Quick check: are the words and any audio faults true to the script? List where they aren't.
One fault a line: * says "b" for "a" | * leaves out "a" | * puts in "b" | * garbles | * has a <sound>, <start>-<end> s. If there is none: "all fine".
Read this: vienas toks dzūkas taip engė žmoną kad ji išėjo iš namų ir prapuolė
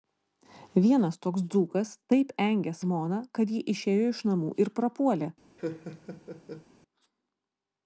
* has a laugh, 5.6-6.7 s